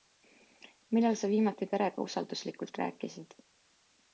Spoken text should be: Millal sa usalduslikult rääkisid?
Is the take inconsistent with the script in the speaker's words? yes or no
yes